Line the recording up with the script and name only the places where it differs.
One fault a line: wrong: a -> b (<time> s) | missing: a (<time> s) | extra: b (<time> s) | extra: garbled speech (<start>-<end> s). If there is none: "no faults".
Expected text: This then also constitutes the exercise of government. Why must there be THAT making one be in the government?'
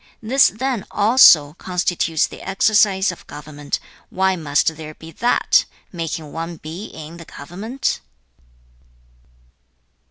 no faults